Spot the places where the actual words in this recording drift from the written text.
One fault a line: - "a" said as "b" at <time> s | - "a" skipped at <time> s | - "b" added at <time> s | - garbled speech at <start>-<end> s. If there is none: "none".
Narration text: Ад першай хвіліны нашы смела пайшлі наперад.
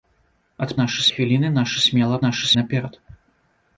- "першай" said as "нашы" at 0.8 s
- "пайшлі" said as "нашы" at 2.2 s